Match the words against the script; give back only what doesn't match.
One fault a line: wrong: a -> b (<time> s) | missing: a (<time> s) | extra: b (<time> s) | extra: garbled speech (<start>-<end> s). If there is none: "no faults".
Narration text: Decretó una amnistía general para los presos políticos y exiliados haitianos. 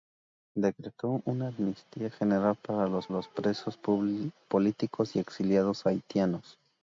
extra: los (3.1 s)